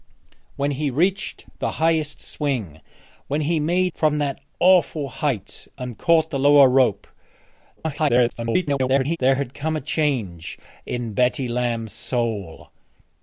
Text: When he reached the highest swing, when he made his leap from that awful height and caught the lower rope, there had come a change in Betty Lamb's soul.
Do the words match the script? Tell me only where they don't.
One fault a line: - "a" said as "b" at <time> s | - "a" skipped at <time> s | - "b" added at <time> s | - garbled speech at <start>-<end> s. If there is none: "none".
- "his leap" skipped at 3.9 s
- garbled speech at 7.8-9.2 s